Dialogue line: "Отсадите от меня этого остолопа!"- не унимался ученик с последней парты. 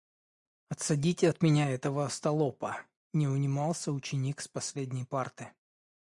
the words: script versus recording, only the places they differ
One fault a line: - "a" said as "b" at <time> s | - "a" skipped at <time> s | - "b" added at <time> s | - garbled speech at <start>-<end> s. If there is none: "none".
none